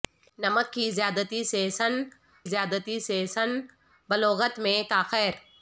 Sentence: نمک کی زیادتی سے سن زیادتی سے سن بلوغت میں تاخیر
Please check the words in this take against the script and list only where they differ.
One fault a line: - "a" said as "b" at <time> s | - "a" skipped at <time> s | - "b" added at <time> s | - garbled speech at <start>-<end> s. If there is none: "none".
none